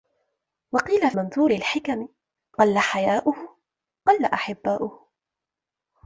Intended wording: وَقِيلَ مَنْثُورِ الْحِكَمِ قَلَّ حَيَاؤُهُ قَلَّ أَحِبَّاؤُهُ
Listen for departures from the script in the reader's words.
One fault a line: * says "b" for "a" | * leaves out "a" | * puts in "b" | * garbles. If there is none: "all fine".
all fine